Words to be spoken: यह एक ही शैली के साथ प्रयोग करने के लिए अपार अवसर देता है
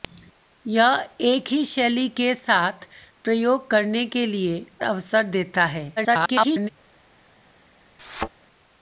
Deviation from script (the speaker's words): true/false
true